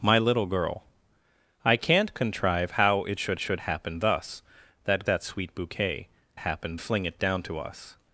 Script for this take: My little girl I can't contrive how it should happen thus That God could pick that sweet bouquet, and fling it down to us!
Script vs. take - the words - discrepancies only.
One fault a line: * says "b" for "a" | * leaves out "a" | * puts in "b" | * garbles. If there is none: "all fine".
* puts in "should"
* leaves out "God could pick"
* says "happen" for "and"